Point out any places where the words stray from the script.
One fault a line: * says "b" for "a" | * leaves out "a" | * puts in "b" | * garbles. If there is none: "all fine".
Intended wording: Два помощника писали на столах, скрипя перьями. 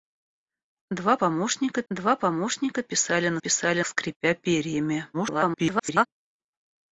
* puts in "два помощника"
* says "писали" for "столах"
* garbles